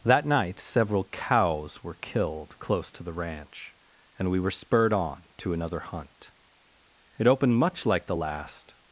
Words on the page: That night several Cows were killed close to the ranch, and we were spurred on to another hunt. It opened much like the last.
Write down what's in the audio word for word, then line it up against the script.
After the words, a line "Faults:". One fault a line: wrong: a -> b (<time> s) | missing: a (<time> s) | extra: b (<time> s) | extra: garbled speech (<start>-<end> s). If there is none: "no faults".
That night several Cows were killed close to the ranch, and we were spurred on to another hunt. It opened much like the last.
Faults:
no faults